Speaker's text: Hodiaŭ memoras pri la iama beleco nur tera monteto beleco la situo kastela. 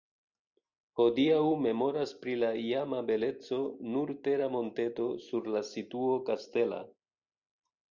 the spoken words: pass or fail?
fail